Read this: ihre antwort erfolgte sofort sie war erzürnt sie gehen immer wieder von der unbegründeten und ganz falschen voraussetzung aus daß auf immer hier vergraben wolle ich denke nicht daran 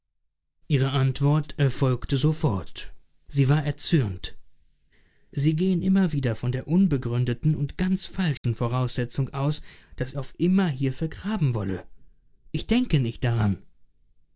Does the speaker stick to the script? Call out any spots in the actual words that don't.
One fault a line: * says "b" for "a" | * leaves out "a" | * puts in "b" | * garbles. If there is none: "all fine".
all fine